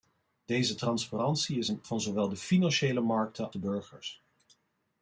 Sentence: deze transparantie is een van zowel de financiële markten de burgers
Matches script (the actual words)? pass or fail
pass